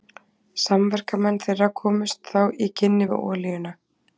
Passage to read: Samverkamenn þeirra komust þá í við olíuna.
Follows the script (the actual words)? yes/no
no